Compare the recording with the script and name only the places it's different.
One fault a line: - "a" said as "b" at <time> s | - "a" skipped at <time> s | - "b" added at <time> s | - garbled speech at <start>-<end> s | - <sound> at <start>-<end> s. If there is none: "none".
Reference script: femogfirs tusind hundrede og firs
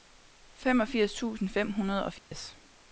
- "fem" added at 1.5 s
- dropout at 2.2-2.3 s